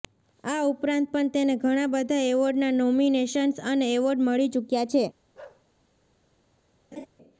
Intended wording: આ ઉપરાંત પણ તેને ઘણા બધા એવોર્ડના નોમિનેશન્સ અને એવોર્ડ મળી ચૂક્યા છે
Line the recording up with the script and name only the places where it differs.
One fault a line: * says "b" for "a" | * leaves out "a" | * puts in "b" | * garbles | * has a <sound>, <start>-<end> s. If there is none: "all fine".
* has a bark, 5.3-5.6 s
* has a laugh, 6.9-7.1 s